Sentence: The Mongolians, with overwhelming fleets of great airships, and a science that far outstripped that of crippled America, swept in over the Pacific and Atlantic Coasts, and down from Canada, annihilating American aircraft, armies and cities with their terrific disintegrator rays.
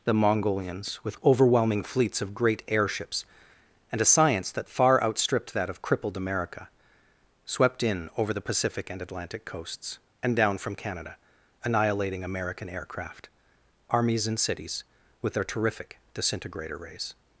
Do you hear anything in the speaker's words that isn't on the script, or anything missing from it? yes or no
no